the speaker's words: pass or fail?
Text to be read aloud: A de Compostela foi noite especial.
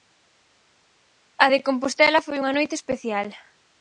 fail